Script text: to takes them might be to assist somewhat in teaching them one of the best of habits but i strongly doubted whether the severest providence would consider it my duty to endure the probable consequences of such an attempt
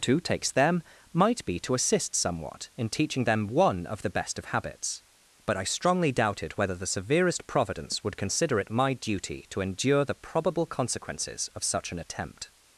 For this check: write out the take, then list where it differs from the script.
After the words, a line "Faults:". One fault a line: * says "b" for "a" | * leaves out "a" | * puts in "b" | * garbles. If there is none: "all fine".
to takes them might be to assist somewhat in teaching them one of the best of habits but i strongly doubted whether the severest providence would consider it my duty to endure the probable consequences of such an attempt
Faults:
all fine